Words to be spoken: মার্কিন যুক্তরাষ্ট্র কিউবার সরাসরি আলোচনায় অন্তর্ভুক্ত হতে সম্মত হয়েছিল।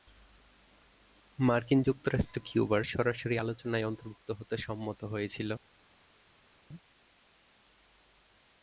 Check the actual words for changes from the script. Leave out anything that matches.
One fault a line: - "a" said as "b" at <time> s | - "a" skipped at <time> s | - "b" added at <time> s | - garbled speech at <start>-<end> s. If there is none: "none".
none